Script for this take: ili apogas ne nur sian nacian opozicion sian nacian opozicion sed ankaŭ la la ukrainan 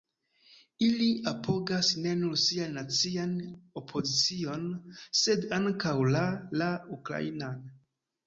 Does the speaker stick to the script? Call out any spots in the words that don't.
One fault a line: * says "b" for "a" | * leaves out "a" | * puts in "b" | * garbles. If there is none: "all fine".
* leaves out "sian nacian opozicion"